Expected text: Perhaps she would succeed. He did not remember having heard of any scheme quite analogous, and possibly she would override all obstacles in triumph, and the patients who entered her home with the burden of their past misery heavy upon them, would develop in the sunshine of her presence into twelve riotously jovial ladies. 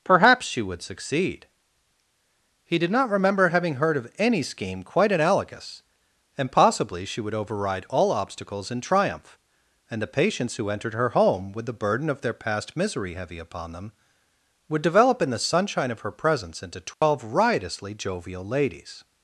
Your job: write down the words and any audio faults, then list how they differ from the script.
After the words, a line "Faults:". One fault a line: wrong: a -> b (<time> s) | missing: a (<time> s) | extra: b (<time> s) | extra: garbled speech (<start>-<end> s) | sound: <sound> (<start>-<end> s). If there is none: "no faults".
Perhaps she would succeed. He did not remember having heard of any scheme quite analogous, and possibly she would override all obstacles in triumph, and the patients who entered her home with the burden of their past misery heavy upon them, would develop in the sunshine of her presence into twelve riotously jovial ladies.
Faults:
sound: dropout (16.9-17.0 s)